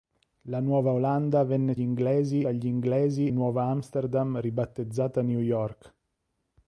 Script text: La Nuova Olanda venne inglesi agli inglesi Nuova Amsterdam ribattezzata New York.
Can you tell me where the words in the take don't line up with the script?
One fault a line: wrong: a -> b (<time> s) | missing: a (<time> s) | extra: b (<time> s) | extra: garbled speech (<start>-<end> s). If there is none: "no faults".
no faults